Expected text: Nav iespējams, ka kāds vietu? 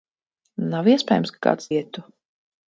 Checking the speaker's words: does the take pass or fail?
pass